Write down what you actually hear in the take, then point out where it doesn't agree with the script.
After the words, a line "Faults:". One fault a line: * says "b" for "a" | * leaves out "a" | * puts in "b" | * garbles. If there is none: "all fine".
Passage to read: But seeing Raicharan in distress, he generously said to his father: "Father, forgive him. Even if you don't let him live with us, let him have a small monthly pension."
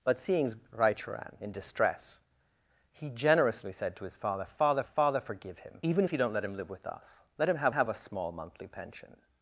But seeing Raicharan in distress, he generously said to his father: "Father father, forgive him. Even if you don't let him live with us, let him have have a small monthly pension."
Faults:
* puts in "father"
* puts in "have"